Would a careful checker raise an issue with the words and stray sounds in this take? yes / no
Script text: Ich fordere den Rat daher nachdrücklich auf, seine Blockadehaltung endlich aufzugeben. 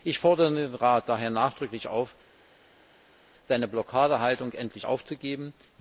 no